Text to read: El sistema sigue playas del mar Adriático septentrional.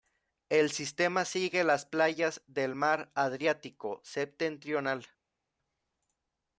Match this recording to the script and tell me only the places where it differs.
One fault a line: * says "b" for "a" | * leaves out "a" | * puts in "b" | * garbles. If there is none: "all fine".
* puts in "las"